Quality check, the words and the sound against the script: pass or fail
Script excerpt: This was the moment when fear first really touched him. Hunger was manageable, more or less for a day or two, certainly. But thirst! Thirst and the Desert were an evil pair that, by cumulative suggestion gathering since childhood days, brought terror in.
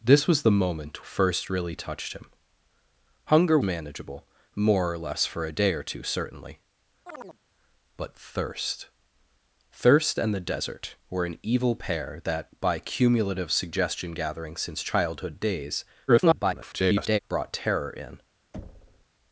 fail